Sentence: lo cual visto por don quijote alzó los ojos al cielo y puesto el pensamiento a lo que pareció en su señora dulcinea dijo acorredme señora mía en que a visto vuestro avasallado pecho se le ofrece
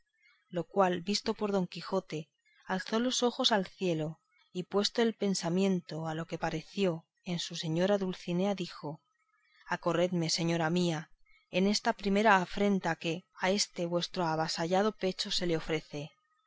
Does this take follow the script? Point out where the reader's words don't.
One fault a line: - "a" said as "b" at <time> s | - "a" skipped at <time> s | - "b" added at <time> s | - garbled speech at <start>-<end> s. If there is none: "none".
- "esta primera afrenta" added at 11.7 s
- "visto" said as "este" at 13.5 s